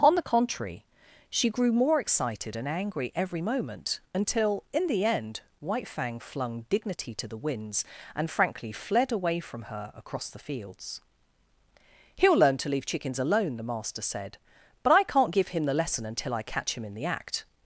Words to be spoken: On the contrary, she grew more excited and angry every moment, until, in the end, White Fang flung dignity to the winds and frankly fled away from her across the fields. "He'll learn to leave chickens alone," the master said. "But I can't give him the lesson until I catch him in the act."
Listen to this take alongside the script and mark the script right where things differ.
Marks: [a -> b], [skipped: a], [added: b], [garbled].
On the contrary, she grew more excited and angry every moment, until, in the end, White Fang flung dignity to the winds and frankly fled away from her across the fields. "He'll learn to leave chickens alone," the master said. "But I can't give him the lesson until I catch him in the act."